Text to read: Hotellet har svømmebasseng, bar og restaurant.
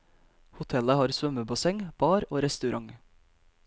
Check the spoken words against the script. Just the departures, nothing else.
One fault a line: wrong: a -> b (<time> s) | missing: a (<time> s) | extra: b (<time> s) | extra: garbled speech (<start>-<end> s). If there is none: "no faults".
no faults